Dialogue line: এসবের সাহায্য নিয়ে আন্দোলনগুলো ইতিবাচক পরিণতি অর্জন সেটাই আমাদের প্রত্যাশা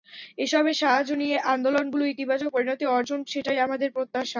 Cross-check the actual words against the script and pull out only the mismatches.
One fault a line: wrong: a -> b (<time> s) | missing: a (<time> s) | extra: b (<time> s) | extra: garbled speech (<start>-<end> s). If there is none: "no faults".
no faults